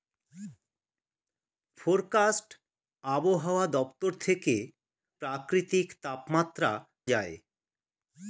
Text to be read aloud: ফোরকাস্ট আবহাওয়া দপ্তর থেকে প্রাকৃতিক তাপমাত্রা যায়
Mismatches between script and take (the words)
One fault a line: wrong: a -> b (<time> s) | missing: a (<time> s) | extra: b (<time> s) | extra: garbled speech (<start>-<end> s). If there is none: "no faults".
no faults